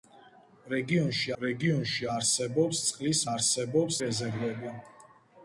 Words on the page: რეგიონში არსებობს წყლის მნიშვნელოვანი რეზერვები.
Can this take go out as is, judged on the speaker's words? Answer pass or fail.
fail